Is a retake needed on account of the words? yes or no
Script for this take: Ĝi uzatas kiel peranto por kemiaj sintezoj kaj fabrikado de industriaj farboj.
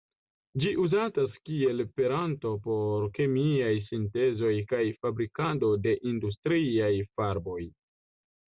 no